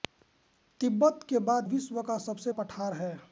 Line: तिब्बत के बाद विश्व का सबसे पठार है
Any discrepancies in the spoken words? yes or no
no